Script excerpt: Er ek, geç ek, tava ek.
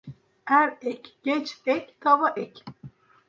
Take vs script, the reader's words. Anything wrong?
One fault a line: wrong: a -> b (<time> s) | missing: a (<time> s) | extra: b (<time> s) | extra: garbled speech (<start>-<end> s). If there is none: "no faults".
no faults